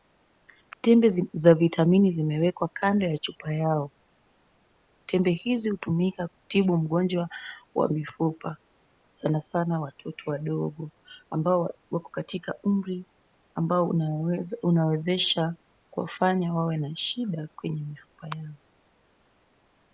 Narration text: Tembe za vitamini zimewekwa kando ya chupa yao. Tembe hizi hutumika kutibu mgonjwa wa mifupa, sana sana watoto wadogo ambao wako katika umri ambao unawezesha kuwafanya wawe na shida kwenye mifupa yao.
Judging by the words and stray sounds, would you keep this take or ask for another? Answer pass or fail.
pass